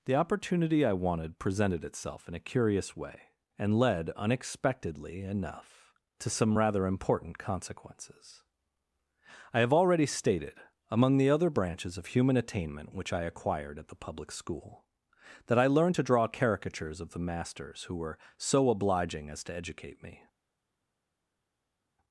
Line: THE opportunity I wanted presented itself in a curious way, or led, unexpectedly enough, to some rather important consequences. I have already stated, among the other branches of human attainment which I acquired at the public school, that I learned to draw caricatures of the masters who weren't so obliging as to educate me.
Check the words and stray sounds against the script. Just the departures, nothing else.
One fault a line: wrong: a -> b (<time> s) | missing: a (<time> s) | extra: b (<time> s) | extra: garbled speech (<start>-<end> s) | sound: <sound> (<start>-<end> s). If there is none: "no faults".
wrong: or -> and (3.6 s)
wrong: weren't -> were (18.0 s)